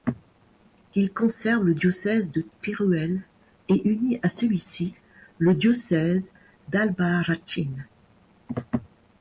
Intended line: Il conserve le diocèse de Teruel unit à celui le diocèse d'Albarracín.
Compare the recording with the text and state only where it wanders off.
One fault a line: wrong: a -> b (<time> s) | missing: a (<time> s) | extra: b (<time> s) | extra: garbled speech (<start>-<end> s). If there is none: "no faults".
extra: et (3.7 s)
extra: ci (4.6 s)